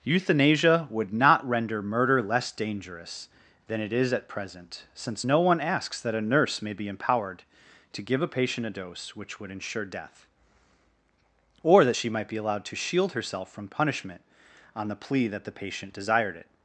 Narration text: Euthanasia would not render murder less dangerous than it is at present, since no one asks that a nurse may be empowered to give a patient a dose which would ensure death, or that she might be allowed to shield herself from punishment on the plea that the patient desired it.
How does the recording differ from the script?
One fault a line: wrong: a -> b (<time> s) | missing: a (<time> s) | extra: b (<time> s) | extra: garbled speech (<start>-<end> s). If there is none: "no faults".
no faults